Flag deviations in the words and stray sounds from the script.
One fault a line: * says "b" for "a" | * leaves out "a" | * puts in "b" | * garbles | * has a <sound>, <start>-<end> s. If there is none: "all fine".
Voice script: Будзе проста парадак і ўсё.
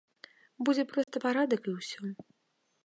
* has a dropout, 1.0-1.1 s